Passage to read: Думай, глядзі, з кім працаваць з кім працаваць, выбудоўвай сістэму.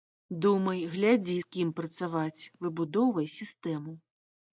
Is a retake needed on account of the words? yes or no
yes